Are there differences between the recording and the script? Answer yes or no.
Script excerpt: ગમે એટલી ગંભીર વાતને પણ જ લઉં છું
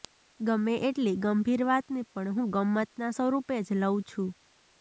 yes